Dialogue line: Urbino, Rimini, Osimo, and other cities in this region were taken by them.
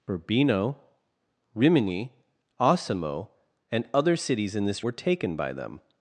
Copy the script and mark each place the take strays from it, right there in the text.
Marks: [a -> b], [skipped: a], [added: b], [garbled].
Urbino, Rimini, Osimo, and other cities in this [skipped: region] were taken by them.